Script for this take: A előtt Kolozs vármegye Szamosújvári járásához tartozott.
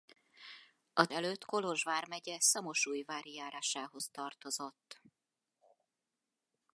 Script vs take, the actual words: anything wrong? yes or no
no